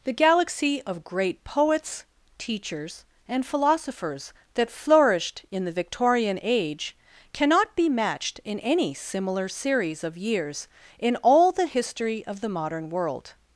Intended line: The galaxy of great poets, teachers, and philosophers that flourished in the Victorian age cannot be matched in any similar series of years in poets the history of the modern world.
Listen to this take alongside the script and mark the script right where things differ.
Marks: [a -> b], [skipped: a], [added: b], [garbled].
The galaxy of great poets, teachers, and philosophers that flourished in the Victorian age cannot be matched in any similar series of years in [poets -> all] the history of the modern world.